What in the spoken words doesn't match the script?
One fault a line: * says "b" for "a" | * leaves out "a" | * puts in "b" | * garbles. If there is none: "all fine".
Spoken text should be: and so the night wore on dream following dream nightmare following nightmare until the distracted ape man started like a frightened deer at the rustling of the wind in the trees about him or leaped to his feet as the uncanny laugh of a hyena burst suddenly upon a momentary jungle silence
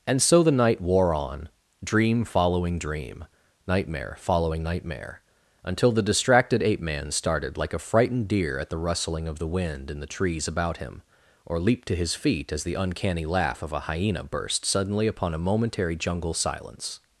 all fine